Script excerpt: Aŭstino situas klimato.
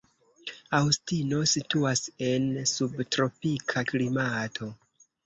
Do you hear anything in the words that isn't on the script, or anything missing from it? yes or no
yes